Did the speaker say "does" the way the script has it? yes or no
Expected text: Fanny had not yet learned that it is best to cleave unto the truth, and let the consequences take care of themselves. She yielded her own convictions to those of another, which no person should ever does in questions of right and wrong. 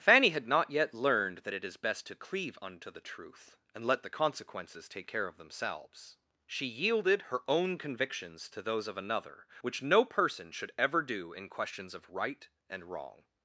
no